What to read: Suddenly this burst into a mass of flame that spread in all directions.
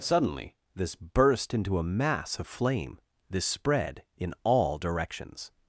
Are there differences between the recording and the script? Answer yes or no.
yes